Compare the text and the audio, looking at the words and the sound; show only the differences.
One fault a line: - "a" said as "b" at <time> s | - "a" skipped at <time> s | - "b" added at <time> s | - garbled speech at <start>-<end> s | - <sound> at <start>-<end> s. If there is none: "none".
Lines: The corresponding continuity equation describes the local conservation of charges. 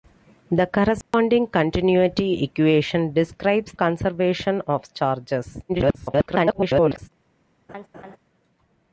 - dropout at 1.0-1.1 s
- "the local" skipped at 3.7 s
- garbled speech at 5.7-7.1 s
- laugh at 7.7-8.2 s